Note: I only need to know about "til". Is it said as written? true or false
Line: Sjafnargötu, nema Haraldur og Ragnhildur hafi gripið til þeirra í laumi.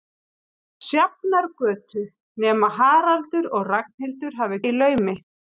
false